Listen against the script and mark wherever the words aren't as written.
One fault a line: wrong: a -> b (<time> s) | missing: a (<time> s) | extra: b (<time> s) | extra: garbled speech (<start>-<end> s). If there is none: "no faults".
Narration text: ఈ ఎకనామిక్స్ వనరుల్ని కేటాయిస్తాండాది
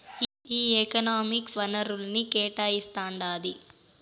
no faults